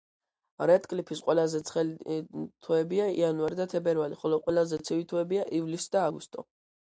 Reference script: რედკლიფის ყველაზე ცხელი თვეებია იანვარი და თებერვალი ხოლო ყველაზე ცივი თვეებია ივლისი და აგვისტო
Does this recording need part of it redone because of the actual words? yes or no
no